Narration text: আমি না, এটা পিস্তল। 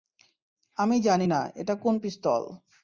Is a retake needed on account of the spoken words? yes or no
yes